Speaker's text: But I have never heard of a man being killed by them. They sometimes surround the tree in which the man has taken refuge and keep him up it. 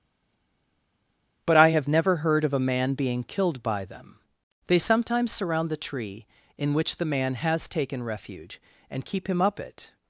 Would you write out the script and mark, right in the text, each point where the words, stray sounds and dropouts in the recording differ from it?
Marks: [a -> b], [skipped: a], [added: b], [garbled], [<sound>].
But I have never heard of a man being killed by them. They sometimes surround the tree in which the man has taken refuge and keep him up it.